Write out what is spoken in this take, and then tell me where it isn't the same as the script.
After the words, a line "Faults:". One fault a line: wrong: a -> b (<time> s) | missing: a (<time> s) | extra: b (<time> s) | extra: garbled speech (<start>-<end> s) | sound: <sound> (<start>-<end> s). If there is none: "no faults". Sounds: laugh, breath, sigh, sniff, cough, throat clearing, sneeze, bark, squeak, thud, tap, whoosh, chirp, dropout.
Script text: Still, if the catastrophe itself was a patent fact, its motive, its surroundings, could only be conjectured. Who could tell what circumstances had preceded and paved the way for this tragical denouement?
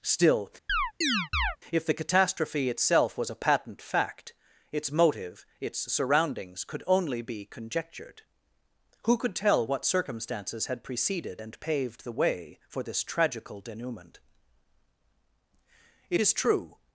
Still, if the catastrophe itself was a patent fact, its motive, its surroundings, could only be conjectured. Who could tell what circumstances had preceded and paved the way for this tragical denouement? It is true
Faults:
sound: chirp (0.7-1.6 s)
extra: It is true (16.1 s)